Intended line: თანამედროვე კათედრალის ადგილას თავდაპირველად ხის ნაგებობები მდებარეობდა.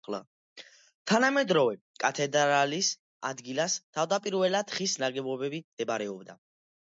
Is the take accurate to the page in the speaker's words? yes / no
yes